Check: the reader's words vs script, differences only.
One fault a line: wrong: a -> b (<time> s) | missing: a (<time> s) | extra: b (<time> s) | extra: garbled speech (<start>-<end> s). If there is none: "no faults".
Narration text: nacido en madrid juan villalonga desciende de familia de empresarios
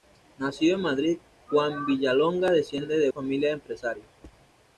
no faults